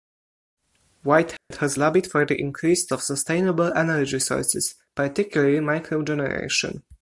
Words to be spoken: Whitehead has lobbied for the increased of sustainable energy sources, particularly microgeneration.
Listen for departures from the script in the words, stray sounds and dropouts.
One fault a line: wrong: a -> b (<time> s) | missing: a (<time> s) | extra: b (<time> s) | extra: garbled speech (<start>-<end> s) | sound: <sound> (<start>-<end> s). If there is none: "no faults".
sound: dropout (1.4-1.5 s)